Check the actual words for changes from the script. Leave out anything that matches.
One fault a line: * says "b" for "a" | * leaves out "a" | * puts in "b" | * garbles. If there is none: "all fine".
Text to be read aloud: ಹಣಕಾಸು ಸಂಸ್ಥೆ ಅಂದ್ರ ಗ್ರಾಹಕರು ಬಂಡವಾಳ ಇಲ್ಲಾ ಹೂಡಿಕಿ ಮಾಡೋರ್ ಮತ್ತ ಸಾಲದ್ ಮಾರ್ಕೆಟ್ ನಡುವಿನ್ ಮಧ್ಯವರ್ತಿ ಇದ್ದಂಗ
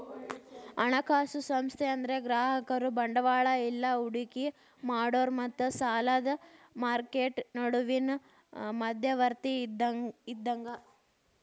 all fine